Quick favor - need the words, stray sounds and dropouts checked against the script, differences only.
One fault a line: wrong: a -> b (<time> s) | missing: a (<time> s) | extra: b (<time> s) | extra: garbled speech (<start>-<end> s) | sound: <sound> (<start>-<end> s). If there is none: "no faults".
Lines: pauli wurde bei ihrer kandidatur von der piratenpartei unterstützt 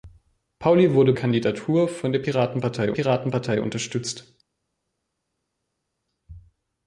missing: bei ihrer (1.1 s)
extra: piratenpartei (2.9 s)